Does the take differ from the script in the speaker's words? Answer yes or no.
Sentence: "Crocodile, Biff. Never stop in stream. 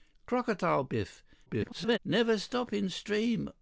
yes